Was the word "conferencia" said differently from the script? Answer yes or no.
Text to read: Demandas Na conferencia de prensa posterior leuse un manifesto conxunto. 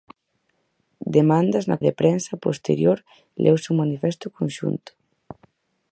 yes